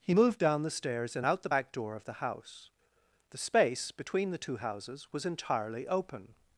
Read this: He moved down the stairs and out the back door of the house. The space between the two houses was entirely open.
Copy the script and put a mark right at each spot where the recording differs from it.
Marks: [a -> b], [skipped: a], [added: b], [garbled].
He moved down the stairs and out the back door of the house. The space between the two houses was entirely open.